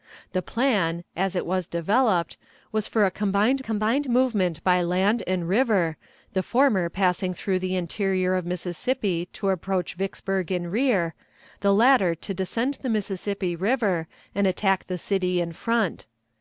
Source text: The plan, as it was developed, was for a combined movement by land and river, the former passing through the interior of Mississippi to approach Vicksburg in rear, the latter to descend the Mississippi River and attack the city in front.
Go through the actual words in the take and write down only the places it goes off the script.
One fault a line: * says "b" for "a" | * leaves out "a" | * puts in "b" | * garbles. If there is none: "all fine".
* puts in "combined"